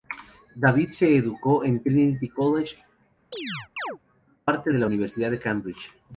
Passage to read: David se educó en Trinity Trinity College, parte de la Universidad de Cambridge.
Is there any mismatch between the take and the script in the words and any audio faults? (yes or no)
yes